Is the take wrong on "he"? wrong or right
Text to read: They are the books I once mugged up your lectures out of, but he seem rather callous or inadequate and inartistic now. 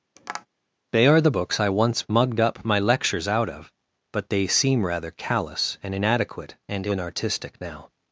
wrong